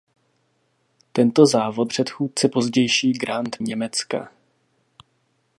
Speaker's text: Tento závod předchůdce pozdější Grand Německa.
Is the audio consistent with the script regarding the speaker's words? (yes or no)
yes